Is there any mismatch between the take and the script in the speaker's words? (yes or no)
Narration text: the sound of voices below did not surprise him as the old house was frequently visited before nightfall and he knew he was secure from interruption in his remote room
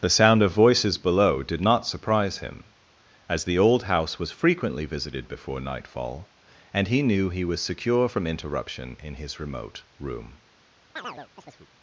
no